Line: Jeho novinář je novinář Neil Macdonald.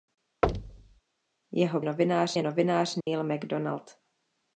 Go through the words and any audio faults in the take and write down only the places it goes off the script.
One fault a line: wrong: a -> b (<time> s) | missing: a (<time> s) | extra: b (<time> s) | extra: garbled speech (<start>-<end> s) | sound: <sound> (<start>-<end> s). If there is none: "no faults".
sound: thud (0.4-1.0 s)
sound: dropout (3.0-3.1 s)